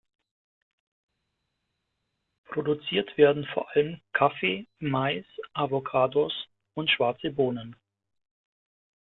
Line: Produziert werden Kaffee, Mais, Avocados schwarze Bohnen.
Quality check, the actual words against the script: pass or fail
fail